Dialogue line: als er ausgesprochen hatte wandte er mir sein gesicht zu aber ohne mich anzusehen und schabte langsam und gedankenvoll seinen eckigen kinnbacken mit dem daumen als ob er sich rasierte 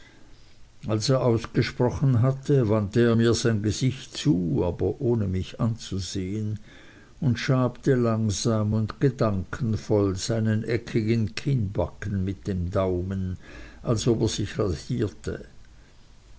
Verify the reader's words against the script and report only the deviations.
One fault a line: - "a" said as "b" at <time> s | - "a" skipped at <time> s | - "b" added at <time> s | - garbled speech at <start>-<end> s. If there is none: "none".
none